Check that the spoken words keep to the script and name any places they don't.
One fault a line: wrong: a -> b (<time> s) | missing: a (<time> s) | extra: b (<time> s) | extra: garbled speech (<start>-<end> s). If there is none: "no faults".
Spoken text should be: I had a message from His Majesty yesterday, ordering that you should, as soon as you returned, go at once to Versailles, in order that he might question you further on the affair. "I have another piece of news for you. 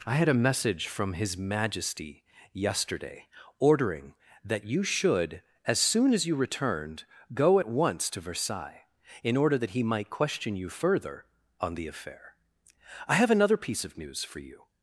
no faults